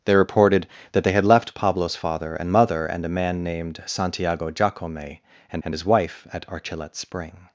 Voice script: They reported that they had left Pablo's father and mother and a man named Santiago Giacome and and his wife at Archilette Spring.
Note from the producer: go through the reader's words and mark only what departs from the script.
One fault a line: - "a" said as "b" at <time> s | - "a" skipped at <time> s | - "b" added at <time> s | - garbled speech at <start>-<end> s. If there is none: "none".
none